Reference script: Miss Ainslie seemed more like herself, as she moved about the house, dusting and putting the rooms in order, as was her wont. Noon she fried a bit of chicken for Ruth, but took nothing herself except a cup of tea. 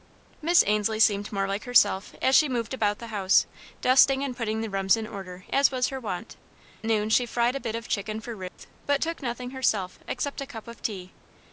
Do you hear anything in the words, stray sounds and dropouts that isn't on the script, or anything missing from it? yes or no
yes